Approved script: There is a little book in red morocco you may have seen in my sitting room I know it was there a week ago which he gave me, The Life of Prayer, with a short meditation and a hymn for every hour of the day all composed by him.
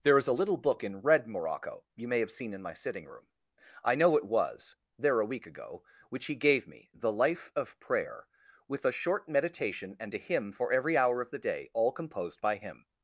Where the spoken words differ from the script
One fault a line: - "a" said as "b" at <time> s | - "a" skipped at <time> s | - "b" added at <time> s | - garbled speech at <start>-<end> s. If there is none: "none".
none